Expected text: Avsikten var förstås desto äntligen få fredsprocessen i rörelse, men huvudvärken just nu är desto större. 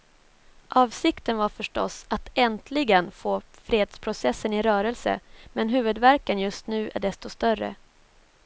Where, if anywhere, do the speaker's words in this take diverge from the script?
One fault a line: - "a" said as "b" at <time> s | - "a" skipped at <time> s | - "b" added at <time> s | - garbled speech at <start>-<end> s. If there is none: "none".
- "desto" said as "att" at 2.1 s